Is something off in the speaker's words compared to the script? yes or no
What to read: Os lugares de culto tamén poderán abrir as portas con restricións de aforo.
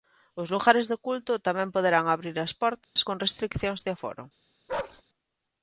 no